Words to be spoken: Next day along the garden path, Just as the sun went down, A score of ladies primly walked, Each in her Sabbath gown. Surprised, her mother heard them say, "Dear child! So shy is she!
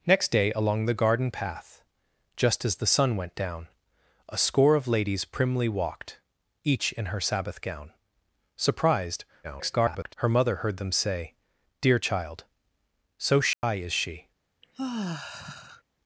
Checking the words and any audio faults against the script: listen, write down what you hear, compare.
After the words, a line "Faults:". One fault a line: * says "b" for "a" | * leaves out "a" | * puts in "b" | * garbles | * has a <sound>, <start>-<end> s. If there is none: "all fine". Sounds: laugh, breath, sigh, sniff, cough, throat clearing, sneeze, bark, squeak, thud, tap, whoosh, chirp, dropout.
Next day along the garden path, Just as the sun went down, A score of ladies primly walked, Each in her Sabbath gown. Surprised, [garbled] her mother heard them say, "Dear child! So shy is she!
Faults:
* garbles
* has a dropout, 13.5-13.6 s
* has a sigh, 14.6-15.8 s